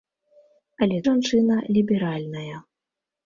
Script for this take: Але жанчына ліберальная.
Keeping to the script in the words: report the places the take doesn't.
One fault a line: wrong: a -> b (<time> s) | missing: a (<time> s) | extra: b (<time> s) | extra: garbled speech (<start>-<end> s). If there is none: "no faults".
no faults